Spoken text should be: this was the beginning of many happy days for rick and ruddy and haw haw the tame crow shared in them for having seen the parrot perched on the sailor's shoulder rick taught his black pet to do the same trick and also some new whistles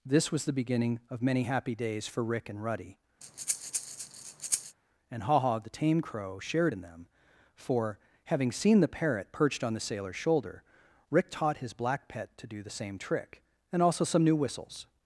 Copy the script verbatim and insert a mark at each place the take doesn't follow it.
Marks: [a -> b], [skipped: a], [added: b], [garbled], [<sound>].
this was the beginning of many happy days for rick and ruddy [breath] and haw haw the tame crow shared in them for having seen the parrot perched on the sailor's shoulder rick taught his black pet to do the same trick and also some new whistles